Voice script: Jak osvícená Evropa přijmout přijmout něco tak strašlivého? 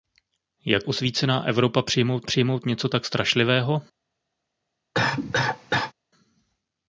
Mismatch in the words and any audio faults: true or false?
true